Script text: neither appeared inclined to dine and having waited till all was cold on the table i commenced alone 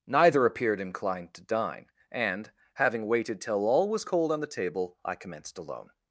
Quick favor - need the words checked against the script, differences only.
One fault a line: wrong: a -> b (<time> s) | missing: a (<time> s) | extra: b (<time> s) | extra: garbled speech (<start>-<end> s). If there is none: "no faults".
no faults